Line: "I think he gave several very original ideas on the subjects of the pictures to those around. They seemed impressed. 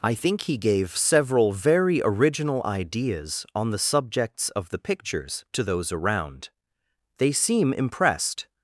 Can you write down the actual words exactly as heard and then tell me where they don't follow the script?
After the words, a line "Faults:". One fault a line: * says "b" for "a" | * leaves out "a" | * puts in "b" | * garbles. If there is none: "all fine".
"I think he gave several very original ideas on the subjects of the pictures to those around. They seem impressed.
Faults:
* says "seem" for "seemed"